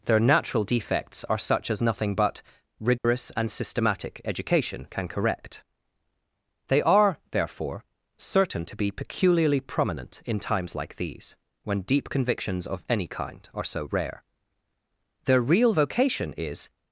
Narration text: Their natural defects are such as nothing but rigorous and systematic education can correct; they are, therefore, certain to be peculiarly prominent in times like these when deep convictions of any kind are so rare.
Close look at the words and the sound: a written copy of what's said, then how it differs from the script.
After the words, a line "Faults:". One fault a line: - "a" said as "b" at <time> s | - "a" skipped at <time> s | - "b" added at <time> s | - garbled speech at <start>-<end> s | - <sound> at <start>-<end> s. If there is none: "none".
Their natural defects are such as nothing but rigorous and systematic education can correct; they are, therefore, certain to be peculiarly prominent in times like these when deep convictions of any kind are so rare. Their real vocation is
Faults:
- dropout at 3.0-3.0 s
- "Their real vocation is" added at 15.3 s